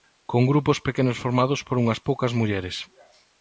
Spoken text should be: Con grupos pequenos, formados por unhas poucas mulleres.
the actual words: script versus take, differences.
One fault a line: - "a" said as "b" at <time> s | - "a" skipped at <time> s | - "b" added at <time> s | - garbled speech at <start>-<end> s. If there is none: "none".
none